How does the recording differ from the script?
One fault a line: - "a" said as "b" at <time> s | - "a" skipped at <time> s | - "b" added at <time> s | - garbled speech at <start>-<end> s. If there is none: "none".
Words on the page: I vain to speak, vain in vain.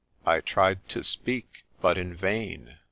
- "vain" said as "tried" at 0.4 s
- "vain" said as "but" at 1.8 s